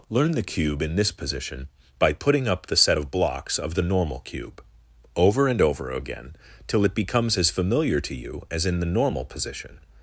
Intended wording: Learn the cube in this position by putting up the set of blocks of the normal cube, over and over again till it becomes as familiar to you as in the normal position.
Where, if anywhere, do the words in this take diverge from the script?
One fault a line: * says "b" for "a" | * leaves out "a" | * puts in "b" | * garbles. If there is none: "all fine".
all fine